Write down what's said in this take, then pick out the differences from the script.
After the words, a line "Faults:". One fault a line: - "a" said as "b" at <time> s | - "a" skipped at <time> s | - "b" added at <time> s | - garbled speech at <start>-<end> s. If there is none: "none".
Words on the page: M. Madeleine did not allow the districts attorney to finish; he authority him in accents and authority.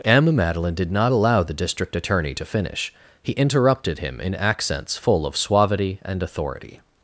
M. Madeleine did not allow the district attorney to finish; he interrupted him in accents full of suavity and authority.
Faults:
- "districts" said as "district" at 1.5 s
- "authority" said as "interrupted" at 3.3 s
- "full of suavity" added at 5.0 s